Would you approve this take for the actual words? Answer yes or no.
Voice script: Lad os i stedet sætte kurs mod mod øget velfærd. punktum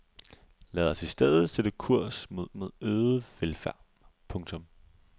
yes